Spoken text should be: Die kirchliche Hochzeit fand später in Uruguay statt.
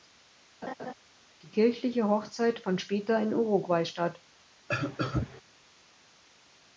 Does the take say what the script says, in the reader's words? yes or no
yes